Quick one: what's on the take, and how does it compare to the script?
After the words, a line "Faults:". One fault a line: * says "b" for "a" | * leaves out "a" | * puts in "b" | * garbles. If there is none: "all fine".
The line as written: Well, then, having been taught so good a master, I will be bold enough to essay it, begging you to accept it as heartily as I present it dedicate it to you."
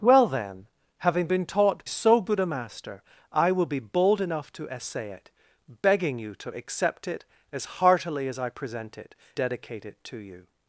Well, then, having been taught so good a master, I will be bold enough to essay it, begging you to accept it as heartily as I present it dedicate it to you."
Faults:
all fine